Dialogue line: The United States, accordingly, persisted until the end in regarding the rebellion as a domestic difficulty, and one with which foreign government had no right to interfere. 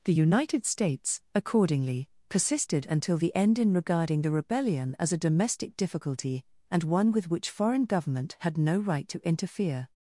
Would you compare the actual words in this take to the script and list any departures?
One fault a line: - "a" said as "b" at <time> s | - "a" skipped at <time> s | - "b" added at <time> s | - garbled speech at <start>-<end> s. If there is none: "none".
none